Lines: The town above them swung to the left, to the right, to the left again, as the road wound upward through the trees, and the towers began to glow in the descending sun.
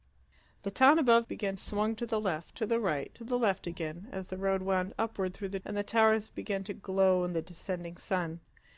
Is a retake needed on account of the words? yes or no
yes